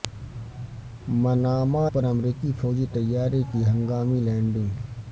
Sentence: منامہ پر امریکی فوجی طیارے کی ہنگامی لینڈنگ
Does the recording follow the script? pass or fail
pass